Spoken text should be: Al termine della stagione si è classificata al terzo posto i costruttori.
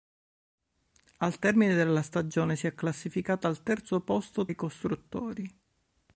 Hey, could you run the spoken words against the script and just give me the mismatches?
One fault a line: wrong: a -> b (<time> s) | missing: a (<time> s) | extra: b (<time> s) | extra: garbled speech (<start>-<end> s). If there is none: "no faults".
no faults